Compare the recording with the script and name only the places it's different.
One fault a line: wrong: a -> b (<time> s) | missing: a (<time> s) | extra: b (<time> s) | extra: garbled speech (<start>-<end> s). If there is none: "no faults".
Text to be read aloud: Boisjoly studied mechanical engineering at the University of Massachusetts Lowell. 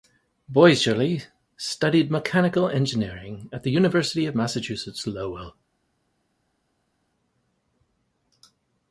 no faults